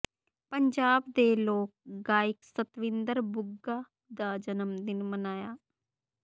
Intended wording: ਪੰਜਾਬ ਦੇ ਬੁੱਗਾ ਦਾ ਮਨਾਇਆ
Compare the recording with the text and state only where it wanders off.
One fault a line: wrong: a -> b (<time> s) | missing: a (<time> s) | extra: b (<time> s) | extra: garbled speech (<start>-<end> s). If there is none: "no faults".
extra: ਲੋਕ ਗਾਇਕ ਸਤਵਿੰਦਰ (1.4 s)
extra: ਜਨਮ ਦਿਨ (4.4 s)